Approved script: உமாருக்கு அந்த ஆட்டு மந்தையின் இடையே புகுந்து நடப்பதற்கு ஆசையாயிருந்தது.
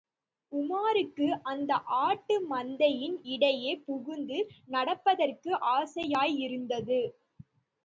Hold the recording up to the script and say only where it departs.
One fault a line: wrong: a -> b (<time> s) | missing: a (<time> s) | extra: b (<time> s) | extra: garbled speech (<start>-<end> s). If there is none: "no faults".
no faults